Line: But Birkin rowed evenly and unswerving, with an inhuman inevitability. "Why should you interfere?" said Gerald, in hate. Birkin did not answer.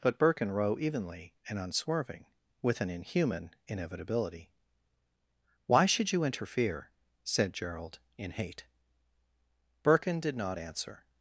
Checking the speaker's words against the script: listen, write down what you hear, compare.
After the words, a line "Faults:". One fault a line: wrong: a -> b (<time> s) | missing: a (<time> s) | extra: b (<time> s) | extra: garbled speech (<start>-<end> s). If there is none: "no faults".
But Birkin row evenly and unswerving, with an inhuman inevitability. "Why should you interfere?" said Gerald, in hate. Birkin did not answer.
Faults:
wrong: rowed -> row (0.5 s)